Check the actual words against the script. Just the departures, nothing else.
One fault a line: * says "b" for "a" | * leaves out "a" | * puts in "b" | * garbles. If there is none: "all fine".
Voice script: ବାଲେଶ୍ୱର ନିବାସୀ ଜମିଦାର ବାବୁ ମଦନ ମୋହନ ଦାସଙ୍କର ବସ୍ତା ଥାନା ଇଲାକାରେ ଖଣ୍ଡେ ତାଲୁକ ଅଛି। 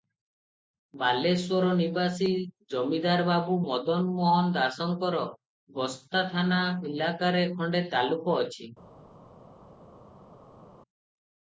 all fine